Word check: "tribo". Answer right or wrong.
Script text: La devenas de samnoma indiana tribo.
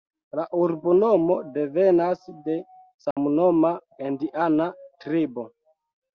right